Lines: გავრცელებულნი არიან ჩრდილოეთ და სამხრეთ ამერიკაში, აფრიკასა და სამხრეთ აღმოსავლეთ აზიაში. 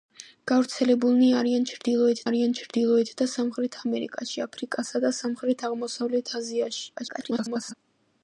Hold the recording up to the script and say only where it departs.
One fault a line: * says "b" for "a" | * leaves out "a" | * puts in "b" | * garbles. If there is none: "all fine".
* puts in "არიან ჩრდილოეთ"
* garbles